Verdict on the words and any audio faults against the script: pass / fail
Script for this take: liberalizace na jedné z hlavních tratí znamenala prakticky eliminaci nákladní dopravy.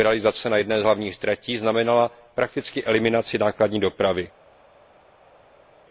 pass